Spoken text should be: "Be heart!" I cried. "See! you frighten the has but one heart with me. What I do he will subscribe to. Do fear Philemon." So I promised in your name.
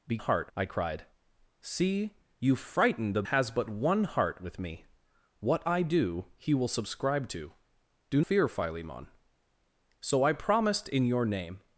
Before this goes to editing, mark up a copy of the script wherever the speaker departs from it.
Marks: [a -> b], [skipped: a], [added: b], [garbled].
"Be heart!" I cried. "See! you frighten the has but one heart with me. What I do he will subscribe to. Do fear Philemon." So I promised in your name.